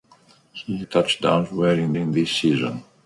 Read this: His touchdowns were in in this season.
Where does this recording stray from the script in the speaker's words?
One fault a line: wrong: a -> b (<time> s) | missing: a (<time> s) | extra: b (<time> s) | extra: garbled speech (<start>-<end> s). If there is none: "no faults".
no faults